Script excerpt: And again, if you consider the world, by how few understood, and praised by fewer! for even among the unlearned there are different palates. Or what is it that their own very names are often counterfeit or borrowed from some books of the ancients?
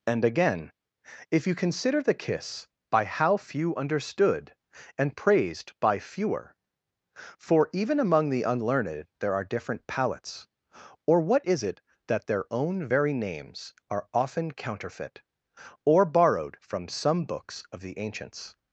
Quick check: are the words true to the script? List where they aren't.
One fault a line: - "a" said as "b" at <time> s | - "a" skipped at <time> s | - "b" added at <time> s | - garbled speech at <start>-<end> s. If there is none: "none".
- "world" said as "kiss" at 2.1 s